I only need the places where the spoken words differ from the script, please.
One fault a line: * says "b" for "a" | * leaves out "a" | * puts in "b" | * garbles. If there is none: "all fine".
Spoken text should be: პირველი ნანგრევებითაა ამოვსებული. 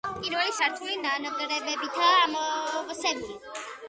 * puts in "სართული"